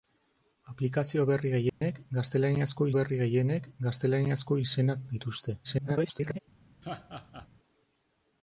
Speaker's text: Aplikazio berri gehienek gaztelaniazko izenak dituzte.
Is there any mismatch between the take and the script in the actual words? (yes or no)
yes